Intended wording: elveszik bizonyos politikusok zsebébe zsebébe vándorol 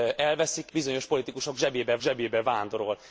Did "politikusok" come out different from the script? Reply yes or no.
no